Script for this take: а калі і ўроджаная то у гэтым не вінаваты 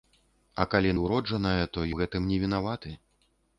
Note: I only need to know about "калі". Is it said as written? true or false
true